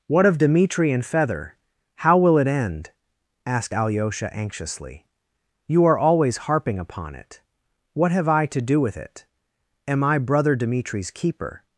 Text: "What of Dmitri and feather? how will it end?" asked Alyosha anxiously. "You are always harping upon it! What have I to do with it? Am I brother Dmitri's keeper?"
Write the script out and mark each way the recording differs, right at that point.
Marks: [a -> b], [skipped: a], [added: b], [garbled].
"What of Dmitri and feather? how will it end?" asked Alyosha anxiously. "You are always harping upon it! What have I to do with it? Am I brother Dmitri's keeper?"